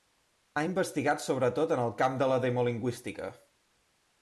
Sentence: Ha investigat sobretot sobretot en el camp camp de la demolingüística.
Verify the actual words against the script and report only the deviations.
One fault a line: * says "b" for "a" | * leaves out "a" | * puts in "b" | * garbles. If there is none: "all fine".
* leaves out "sobretot"
* leaves out "camp"